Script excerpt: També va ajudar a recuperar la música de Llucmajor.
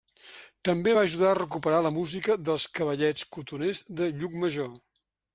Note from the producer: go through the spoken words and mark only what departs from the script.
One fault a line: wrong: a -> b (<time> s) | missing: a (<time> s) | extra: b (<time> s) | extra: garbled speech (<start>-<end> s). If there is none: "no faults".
extra: dels cavallets cotoners (2.5 s)